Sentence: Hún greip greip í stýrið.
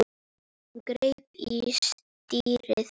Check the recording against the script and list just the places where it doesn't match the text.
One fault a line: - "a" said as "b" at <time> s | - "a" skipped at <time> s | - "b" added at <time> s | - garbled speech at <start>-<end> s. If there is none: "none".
- "greip" skipped at 1.4 s